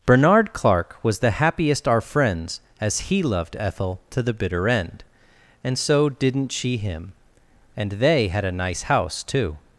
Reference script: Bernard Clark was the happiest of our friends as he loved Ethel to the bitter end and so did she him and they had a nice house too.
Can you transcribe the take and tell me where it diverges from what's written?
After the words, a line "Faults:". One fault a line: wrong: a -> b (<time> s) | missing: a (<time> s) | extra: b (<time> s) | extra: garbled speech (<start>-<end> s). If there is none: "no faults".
Bernard Clark was the happiest our friends as he loved Ethel to the bitter end and so didn't she him and they had a nice house too.
Faults:
missing: of (1.9 s)
wrong: did -> didn't (6.1 s)